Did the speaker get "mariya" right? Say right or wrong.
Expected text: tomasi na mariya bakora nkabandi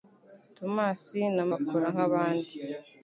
wrong